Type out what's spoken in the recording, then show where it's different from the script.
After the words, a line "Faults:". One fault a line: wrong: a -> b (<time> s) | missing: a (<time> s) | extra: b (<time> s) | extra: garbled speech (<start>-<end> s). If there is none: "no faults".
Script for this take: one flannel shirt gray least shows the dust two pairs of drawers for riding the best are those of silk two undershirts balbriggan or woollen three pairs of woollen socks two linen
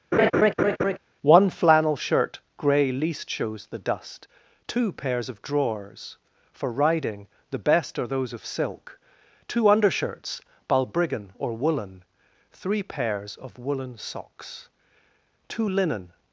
one flannel shirt gray least shows the dust two pairs of drawers for riding the best are those of silk two undershirts balbriggan or woollen three pairs of woollen socks two linen
Faults:
no faults